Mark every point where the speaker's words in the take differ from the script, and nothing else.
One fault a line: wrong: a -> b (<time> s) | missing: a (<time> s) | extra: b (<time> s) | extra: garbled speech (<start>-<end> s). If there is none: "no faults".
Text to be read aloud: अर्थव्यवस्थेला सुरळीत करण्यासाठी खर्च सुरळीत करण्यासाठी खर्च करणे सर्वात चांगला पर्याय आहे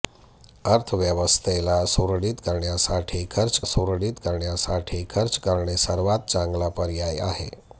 no faults